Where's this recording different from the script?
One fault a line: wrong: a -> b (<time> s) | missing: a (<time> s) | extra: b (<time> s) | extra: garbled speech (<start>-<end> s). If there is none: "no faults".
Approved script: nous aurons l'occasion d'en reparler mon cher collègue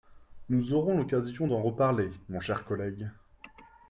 no faults